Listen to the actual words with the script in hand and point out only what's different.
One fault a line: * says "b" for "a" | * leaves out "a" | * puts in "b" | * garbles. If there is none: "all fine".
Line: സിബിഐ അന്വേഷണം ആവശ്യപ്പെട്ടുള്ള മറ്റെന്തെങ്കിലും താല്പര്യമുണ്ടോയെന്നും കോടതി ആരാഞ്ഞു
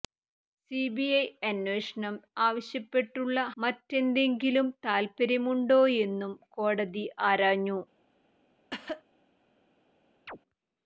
all fine